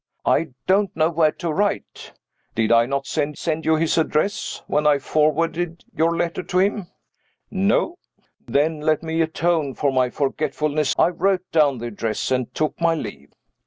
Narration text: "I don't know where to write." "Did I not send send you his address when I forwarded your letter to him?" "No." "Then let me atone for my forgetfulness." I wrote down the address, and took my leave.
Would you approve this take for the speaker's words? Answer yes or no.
yes